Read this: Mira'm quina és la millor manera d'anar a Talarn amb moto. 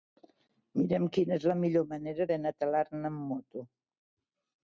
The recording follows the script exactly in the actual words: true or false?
true